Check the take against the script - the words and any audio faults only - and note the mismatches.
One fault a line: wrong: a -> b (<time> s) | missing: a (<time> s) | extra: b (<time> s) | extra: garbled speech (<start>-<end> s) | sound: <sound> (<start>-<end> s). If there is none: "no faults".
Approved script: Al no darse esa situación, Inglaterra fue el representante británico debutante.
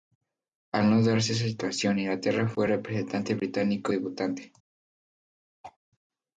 sound: throat clearing (5.6-5.8 s)